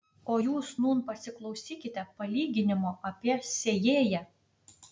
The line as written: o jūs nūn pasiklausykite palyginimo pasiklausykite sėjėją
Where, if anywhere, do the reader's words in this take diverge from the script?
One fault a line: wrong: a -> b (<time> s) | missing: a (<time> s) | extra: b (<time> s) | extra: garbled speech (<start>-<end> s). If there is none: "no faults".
wrong: pasiklausykite -> apie (3.1 s)